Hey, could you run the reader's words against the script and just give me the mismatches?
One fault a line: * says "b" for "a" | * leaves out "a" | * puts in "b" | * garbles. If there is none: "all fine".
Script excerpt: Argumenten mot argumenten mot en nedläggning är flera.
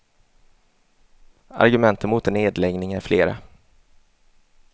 * leaves out "argumenten mot"